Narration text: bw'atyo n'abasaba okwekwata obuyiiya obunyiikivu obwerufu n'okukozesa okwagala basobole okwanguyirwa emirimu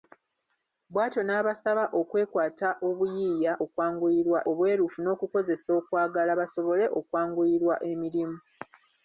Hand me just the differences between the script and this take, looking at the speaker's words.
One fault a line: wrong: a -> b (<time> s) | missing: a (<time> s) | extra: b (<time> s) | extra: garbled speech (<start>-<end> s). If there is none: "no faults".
wrong: obunyiikivu -> okwanguyirwa (3.6 s)